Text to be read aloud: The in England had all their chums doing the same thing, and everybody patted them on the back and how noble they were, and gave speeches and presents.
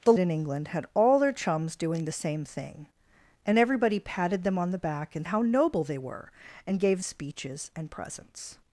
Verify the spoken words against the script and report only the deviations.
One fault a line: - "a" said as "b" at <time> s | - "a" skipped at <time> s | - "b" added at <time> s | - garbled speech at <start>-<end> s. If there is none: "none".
none